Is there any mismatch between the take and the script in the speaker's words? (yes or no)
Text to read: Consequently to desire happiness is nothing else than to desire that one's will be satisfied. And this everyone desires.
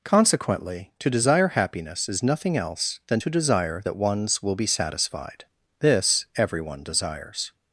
yes